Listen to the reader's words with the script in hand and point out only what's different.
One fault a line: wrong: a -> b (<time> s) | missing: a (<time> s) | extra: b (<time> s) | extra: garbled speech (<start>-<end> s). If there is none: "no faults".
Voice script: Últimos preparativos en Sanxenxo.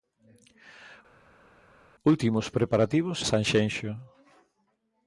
missing: en (3.2 s)